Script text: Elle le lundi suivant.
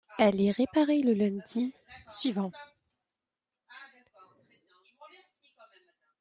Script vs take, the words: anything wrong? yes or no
yes